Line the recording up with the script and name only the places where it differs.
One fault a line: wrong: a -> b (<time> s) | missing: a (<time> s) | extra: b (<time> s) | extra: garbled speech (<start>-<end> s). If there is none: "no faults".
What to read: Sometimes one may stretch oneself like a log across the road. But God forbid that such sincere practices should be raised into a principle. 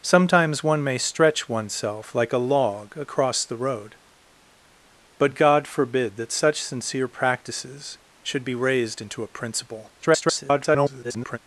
extra: garbled speech (10.0-11.4 s)